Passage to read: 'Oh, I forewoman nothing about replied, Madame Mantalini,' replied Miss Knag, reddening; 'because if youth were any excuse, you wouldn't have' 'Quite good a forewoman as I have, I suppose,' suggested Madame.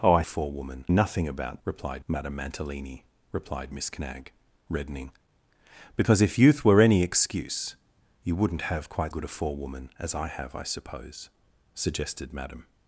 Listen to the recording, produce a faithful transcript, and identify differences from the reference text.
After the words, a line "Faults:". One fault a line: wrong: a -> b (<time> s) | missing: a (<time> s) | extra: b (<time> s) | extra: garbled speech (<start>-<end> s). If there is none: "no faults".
'Oh, I forewoman nothing about replied, Madame Mantalini,' replied Miss Knag, reddening; 'because if youth were any excuse, you wouldn't have' 'Quite good a forewoman as I have, I suppose,' suggested Madame.
Faults:
no faults